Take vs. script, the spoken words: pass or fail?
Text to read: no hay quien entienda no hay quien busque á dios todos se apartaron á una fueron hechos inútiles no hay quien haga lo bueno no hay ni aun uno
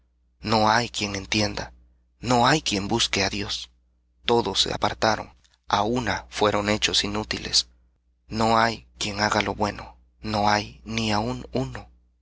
pass